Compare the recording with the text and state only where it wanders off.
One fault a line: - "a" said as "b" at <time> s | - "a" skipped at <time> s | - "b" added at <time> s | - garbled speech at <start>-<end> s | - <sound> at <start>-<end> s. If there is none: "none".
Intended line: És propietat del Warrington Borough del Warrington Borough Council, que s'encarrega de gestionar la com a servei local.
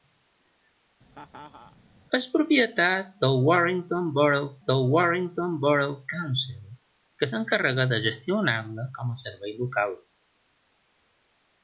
- laugh at 1.1-1.8 s